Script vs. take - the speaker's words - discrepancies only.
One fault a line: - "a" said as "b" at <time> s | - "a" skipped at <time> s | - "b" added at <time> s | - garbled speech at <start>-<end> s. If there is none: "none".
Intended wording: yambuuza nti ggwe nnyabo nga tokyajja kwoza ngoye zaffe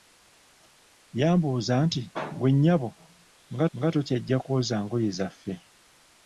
- "nga" added at 3.8 s